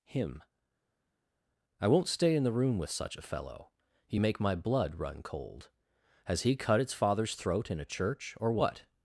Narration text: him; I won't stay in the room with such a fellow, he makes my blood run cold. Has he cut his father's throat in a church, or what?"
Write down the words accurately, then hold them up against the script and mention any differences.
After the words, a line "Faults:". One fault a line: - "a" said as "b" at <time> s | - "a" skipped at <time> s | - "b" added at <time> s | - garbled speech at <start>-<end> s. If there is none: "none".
him; I won't stay in the room with such a fellow, he make my blood run cold. Has he cut its father's throat in a church, or what?"
Faults:
- "makes" said as "make" at 4.2 s
- "his" said as "its" at 6.8 s